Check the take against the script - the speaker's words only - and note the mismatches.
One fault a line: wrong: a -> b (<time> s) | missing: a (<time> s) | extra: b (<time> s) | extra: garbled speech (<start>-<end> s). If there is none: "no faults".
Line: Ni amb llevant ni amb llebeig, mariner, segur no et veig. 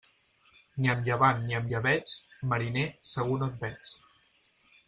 no faults